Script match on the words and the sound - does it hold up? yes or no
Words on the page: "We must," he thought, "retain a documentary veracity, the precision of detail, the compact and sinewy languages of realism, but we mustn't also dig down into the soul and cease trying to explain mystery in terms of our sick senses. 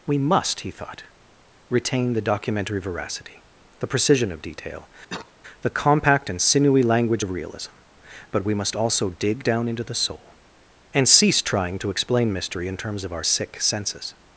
no